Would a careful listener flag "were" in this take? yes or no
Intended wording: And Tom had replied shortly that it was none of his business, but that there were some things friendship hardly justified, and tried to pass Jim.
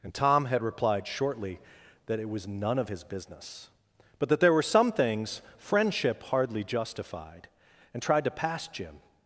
no